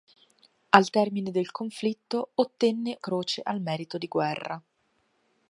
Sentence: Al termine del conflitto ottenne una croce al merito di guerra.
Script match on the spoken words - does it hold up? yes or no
no